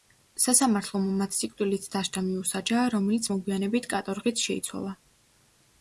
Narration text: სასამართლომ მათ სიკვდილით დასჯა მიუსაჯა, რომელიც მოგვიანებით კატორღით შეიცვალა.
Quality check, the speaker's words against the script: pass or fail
pass